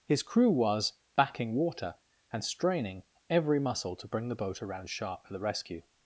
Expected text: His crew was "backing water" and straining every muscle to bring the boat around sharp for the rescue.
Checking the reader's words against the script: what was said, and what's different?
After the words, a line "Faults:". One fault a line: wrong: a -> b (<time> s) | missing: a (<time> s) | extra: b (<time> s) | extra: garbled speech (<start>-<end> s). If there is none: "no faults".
His crew was "backing water" and straining every muscle to bring the boat around sharp for the rescue.
Faults:
no faults